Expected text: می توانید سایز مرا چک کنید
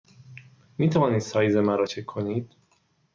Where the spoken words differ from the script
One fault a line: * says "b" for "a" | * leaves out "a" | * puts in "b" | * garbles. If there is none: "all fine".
all fine